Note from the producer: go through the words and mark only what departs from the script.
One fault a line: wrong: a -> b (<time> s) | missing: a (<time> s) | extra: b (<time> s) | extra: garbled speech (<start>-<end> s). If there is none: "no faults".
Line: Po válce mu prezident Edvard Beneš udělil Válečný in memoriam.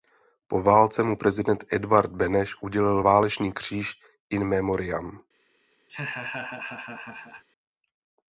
extra: kříž (3.5 s)